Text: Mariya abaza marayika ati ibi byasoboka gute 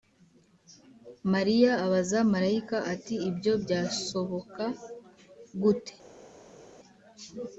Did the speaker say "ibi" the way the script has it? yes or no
no